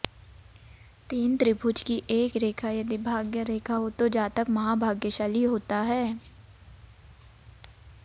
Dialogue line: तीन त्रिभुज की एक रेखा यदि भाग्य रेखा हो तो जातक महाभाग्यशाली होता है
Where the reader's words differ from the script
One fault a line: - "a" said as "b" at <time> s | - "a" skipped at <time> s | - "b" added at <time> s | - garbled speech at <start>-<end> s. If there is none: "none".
none